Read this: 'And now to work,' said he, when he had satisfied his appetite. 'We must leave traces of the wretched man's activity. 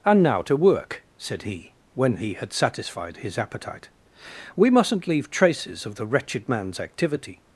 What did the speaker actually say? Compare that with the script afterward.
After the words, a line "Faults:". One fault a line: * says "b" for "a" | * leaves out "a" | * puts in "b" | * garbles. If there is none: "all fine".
'And now to work,' said he, when he had satisfied his appetite. 'We mustn't leave traces of the wretched man's activity.
Faults:
* says "mustn't" for "must"